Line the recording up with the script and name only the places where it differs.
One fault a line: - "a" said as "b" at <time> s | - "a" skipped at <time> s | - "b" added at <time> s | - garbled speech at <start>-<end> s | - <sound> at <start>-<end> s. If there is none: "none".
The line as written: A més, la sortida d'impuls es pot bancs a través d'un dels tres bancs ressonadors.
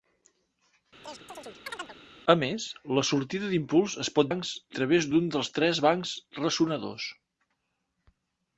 - chirp at 1.0-2.0 s